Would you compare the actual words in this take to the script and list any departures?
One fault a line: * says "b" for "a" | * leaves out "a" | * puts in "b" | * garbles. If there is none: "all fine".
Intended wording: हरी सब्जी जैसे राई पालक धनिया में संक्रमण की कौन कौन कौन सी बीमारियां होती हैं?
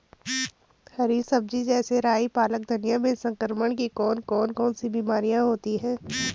all fine